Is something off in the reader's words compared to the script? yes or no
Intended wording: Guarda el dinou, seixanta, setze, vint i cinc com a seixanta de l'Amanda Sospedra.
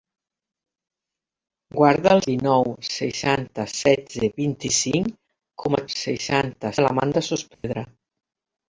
no